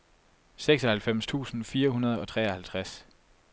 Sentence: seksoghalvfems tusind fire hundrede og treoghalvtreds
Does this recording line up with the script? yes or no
yes